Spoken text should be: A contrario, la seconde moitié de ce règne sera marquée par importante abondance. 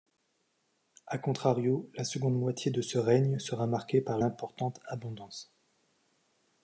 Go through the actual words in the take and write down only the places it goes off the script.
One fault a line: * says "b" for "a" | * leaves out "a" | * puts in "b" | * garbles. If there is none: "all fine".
all fine